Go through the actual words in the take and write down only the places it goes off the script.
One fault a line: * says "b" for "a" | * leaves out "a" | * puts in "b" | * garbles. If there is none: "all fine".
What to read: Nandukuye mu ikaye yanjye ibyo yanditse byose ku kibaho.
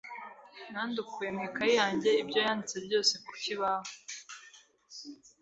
all fine